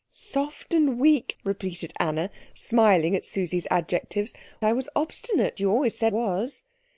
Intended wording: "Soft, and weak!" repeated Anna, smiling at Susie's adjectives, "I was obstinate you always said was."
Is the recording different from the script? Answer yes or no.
no